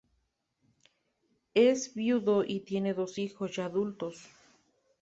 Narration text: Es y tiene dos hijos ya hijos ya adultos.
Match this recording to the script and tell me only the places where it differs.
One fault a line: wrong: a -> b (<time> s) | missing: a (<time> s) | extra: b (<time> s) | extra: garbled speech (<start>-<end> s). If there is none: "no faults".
extra: viudo (1.9 s)
missing: hijos ya (3.7 s)